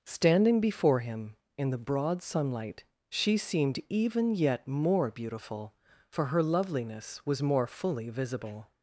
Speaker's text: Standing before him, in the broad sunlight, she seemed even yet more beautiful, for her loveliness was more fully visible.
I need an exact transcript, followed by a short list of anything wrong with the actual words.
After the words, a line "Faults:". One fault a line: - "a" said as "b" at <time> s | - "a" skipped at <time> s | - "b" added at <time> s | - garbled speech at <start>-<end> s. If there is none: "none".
Standing before him, in the broad sunlight, she seemed even yet more beautiful, for her loveliness was more fully visible.
Faults:
none